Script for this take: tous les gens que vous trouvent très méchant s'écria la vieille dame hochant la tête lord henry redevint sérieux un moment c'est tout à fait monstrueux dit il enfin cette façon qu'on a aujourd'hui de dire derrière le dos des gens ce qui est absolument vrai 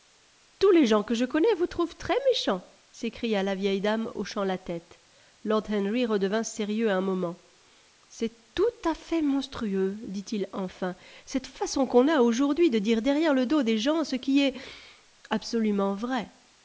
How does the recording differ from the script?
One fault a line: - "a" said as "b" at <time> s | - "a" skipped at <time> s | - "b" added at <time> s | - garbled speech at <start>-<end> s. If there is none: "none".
- "je connais" added at 1.1 s